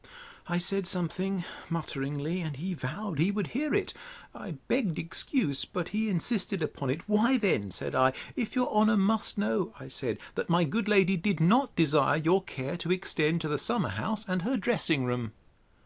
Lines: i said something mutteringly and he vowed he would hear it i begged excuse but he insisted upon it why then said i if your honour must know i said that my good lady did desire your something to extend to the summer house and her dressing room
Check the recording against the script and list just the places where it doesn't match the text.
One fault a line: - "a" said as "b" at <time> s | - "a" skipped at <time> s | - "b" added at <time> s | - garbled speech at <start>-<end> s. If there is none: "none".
- "not" added at 11.4 s
- "something" said as "care" at 12.4 s